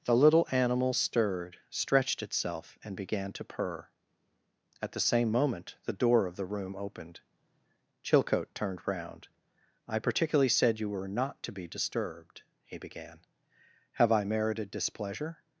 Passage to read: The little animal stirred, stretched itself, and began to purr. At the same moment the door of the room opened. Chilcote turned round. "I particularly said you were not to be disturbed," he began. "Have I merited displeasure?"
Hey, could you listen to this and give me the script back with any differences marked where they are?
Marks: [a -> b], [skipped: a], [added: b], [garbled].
The little animal stirred, stretched itself, and began to purr. At the same moment the door of the room opened. Chilcote turned round. "I particularly said you were not to be disturbed," he began. "Have I merited displeasure?"